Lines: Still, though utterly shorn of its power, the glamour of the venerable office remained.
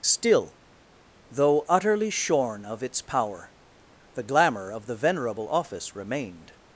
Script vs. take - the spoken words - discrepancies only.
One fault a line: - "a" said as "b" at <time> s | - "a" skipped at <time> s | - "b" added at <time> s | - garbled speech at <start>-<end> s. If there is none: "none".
none